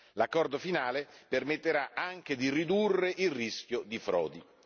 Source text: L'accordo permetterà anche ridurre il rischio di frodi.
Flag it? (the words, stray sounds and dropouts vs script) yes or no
yes